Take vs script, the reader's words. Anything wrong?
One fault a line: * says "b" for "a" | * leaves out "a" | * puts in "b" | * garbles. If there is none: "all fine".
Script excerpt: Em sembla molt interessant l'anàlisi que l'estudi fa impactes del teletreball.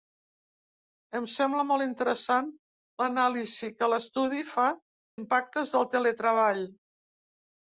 all fine